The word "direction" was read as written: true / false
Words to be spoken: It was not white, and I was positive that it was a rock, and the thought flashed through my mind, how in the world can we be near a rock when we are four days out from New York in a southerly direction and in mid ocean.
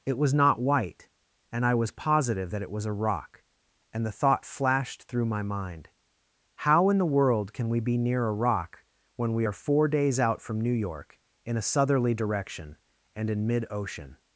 true